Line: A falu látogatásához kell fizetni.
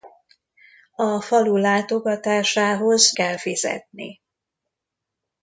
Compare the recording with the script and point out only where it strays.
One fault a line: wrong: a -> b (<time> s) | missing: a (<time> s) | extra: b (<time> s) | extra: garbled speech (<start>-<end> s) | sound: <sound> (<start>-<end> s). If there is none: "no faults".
no faults